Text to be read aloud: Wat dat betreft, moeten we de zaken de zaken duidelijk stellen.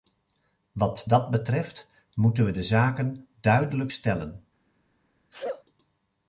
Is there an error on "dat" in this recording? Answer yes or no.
no